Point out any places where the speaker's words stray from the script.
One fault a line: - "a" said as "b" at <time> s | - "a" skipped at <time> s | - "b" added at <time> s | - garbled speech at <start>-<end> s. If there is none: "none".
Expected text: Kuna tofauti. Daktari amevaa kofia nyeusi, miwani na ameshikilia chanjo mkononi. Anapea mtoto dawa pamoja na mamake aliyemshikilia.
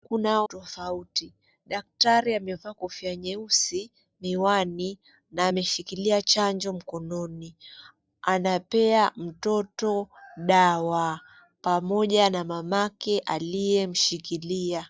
none